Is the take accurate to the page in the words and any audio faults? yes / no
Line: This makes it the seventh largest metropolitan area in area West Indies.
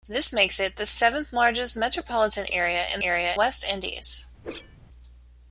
no